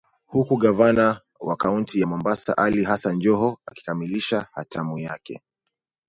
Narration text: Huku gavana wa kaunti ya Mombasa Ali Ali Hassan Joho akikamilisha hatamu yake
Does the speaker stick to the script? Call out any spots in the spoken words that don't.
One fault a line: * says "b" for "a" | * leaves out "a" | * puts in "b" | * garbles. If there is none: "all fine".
* leaves out "Ali"